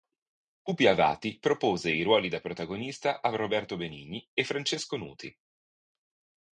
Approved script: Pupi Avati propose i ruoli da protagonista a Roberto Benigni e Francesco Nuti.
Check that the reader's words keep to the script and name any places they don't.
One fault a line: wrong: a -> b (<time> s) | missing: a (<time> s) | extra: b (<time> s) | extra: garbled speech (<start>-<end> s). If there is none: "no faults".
no faults